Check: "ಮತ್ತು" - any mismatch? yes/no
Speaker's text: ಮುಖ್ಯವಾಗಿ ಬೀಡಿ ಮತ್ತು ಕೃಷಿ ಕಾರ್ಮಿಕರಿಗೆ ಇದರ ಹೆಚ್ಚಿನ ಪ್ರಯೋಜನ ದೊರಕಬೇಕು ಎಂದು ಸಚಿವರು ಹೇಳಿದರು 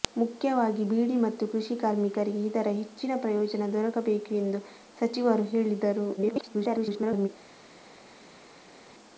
no